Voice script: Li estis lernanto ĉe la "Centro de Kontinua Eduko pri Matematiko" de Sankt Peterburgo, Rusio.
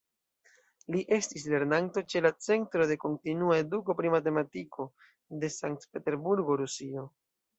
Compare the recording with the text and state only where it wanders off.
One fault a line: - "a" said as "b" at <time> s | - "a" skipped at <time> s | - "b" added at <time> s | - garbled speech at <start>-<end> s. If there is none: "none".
none